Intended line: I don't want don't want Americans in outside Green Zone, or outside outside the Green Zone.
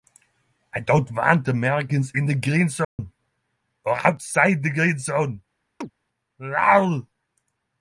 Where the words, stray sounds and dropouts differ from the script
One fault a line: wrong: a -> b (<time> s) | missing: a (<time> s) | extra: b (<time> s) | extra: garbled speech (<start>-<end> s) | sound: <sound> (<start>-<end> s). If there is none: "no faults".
missing: don't want (1.5 s)
wrong: outside -> the (2.3 s)
sound: dropout (2.8-3.0 s)
missing: outside (4.6 s)
sound: chirp (5.8-5.9 s)